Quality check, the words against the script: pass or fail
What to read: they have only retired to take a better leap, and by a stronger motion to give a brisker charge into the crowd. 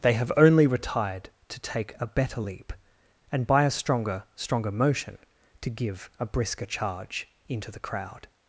fail